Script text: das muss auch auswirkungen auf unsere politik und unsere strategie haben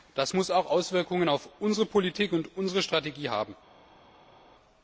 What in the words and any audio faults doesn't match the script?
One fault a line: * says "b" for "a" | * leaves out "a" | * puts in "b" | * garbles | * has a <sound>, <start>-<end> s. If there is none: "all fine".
all fine